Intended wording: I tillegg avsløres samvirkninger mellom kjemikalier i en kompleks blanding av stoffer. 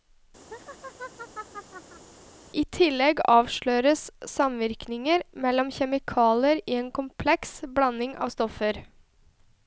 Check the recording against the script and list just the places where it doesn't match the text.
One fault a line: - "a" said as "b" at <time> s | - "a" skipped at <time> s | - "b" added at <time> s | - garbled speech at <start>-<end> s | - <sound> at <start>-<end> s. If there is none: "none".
- laugh at 0.5-2.1 s